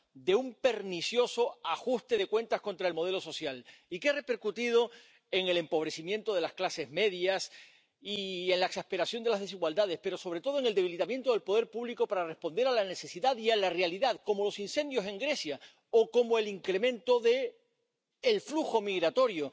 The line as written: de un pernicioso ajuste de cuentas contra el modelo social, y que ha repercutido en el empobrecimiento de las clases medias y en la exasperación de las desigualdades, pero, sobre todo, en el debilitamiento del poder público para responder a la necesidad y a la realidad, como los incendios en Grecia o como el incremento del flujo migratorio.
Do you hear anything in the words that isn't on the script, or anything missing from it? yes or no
no